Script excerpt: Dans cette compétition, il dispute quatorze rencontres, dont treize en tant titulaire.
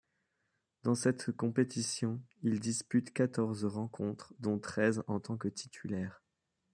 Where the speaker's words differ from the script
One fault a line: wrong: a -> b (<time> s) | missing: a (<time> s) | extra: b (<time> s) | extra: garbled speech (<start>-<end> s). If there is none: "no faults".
extra: que (5.4 s)